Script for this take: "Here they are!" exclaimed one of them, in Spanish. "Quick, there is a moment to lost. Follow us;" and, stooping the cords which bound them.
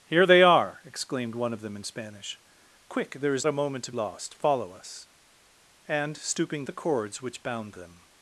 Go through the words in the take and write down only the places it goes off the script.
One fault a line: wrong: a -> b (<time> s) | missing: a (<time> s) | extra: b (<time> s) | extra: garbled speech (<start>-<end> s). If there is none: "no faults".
no faults